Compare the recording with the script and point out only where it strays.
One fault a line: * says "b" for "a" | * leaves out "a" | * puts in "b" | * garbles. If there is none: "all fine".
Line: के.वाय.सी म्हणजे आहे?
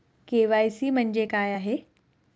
* puts in "काय"